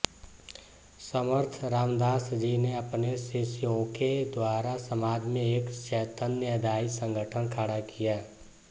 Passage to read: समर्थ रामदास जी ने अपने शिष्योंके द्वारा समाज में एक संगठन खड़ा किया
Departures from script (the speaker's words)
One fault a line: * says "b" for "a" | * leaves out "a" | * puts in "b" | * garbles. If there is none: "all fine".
* puts in "चैतन्यदायी"